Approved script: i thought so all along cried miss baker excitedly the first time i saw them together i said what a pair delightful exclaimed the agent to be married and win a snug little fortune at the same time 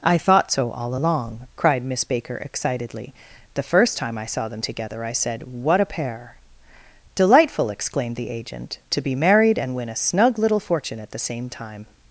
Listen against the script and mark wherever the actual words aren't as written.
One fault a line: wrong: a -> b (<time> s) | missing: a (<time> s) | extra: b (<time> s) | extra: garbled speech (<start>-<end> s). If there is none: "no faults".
no faults